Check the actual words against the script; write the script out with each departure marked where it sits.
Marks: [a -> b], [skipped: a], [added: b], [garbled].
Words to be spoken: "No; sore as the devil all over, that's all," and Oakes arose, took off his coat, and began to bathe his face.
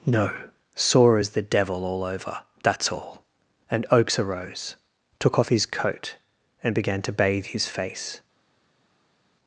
"No; sore as the devil all over, that's all," and Oakes arose, took off his coat, and began to bathe his face.